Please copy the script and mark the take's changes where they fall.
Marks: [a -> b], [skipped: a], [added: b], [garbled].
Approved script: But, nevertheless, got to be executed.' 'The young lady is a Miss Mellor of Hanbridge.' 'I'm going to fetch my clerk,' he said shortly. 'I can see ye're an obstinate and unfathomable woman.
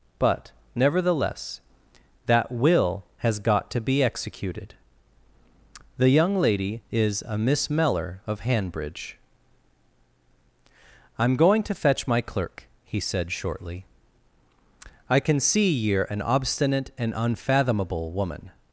But, nevertheless, [added: that will has] got to be executed.' 'The young lady is a Miss Mellor of Hanbridge.' 'I'm going to fetch my clerk,' he said shortly. 'I can see ye're an obstinate and unfathomable woman.